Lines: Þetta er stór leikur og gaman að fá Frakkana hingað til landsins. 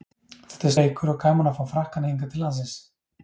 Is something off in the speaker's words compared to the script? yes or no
yes